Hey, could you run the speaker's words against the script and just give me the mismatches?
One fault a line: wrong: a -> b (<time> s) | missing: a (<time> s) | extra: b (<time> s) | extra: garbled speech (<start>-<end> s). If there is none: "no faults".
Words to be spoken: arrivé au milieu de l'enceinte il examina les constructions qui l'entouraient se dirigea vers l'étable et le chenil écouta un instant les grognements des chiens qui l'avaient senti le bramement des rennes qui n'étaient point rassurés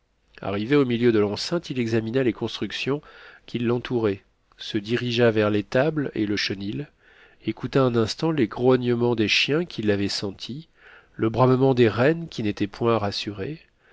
no faults